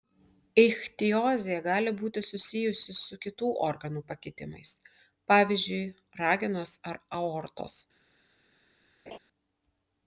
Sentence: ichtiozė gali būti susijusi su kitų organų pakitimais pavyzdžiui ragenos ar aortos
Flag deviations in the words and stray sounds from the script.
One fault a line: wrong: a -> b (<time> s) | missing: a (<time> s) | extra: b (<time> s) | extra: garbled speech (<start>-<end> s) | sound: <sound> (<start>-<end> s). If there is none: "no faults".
sound: laugh (9.1-9.2 s)